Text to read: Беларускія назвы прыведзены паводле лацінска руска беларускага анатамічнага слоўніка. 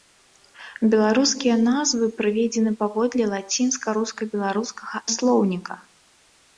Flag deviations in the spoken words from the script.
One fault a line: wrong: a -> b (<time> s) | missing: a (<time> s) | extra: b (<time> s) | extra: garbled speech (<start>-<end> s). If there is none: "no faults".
missing: анатамічнага (5.0 s)